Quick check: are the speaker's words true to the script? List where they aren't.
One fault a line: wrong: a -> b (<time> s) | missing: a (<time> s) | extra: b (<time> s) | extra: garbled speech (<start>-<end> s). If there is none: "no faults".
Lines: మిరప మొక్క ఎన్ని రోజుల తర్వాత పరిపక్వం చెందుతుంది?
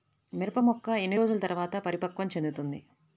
no faults